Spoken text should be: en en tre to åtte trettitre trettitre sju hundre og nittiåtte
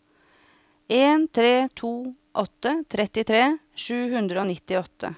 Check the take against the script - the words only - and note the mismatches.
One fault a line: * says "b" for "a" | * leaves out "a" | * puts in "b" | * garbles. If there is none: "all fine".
* leaves out "en"
* leaves out "trettitre"